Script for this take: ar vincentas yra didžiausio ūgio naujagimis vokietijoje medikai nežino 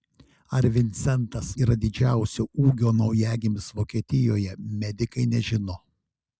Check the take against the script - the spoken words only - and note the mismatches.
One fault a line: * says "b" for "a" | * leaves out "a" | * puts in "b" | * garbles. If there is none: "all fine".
all fine